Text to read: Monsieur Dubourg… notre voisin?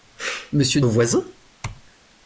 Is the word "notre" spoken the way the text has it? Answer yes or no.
no